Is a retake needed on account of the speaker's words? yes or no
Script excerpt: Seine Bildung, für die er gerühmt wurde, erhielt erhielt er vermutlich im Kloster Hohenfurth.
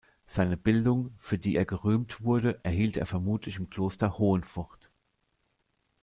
yes